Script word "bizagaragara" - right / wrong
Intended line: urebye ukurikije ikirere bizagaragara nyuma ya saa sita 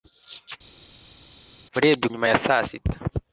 wrong